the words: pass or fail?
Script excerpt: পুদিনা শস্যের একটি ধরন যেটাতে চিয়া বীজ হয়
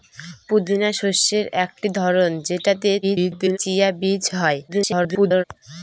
fail